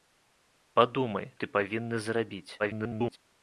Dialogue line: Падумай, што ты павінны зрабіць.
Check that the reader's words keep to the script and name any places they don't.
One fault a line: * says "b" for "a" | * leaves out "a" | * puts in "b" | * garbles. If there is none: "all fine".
* leaves out "што"
* garbles